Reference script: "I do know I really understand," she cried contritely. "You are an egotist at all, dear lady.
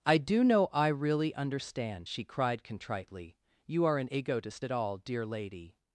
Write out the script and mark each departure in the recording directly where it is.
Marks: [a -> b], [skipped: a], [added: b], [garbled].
"I do know I really understand," she cried contritely. "You are an egotist at all, dear lady.